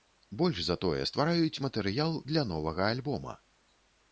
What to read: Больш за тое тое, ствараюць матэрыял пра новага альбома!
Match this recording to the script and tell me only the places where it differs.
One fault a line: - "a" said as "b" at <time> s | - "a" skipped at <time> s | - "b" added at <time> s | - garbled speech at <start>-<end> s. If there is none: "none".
- "тое" skipped at 1.0 s
- "пра" said as "для" at 2.3 s